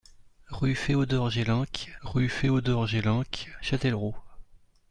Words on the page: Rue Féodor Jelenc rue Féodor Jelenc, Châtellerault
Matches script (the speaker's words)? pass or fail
pass